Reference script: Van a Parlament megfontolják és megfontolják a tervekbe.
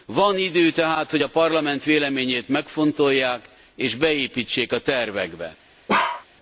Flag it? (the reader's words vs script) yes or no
yes